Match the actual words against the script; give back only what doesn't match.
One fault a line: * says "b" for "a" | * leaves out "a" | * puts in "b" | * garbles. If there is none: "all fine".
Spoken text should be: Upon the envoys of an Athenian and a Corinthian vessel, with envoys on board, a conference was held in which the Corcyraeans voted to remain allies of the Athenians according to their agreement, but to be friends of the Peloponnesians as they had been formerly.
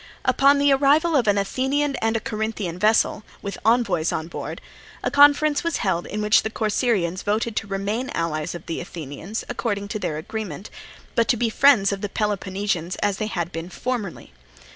* says "arrival" for "envoys"